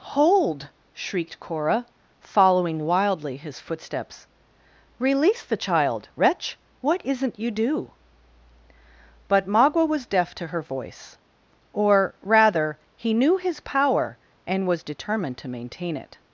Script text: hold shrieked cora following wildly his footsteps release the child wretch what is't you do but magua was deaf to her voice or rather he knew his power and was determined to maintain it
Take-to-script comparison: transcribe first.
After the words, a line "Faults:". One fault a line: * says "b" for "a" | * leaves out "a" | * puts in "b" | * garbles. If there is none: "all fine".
hold shrieked cora following wildly his footsteps release the child wretch what is't you do but magua was deaf to her voice or rather he knew his power and was determined to maintain it
Faults:
all fine